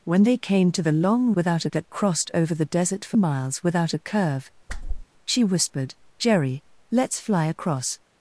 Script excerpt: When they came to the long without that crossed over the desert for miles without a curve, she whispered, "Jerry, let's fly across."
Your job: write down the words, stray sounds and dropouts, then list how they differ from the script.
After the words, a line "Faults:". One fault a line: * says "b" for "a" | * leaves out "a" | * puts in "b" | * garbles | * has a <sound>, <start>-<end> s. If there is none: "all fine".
When they came to the long without that crossed over the desert for miles without a curve, she whispered, "Jerry, let's fly across."
Faults:
* has a whoosh, 4.7-5.1 s